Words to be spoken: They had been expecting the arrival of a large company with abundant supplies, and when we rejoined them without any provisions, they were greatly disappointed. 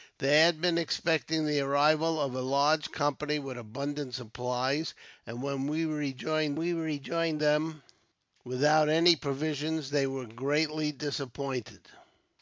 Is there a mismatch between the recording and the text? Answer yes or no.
yes